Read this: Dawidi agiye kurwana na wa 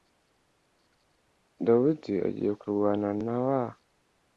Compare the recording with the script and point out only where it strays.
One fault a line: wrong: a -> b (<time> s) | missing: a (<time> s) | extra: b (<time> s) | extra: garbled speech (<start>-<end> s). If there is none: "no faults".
no faults